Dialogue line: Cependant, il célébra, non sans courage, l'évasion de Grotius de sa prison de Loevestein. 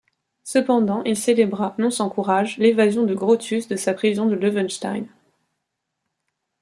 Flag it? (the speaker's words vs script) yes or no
no